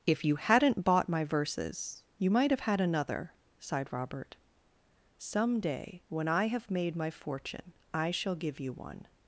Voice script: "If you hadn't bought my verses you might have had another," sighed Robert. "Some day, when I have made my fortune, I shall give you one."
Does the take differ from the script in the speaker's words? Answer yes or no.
no